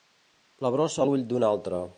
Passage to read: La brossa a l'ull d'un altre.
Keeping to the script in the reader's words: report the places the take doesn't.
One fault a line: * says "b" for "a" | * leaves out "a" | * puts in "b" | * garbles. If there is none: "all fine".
all fine